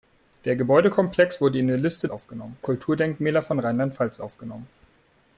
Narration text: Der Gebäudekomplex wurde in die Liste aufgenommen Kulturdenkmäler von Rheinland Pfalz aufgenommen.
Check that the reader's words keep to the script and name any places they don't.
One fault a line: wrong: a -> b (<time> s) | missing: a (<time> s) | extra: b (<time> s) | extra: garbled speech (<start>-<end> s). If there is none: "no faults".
no faults